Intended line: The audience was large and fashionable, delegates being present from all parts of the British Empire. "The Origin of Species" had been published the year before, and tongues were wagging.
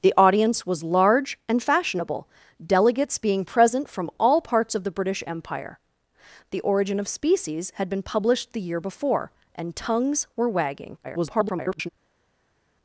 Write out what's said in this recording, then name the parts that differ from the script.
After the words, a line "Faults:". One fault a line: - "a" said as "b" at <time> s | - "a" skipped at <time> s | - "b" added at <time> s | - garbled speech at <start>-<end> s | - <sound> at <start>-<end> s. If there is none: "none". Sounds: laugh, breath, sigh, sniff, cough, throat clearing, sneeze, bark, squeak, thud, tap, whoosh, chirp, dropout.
The audience was large and fashionable, delegates being present from all parts of the British Empire. "The Origin of Species" had been published the year before, and tongues were wagging. [garbled]
Faults:
- garbled speech at 11.0-11.9 s